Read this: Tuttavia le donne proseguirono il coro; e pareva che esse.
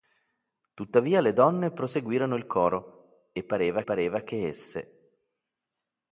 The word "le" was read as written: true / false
true